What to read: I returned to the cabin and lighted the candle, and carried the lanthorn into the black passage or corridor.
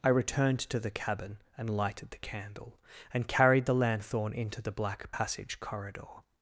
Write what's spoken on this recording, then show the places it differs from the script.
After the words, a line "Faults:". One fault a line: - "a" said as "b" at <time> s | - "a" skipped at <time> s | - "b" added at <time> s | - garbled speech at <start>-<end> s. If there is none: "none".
I returned to the cabin and lighted the candle, and carried the lanthorn into the black passage corridor.
Faults:
- "or" skipped at 5.6 s